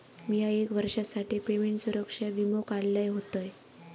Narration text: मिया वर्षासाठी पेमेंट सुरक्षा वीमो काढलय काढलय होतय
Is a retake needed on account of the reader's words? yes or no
yes